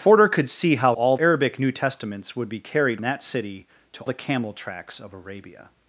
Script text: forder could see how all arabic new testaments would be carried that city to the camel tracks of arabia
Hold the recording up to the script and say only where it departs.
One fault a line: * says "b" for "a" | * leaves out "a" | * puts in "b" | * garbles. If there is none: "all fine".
all fine